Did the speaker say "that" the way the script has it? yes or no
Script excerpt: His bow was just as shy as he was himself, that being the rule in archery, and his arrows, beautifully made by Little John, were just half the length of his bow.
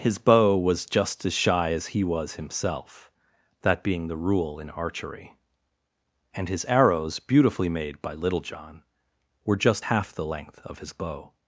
yes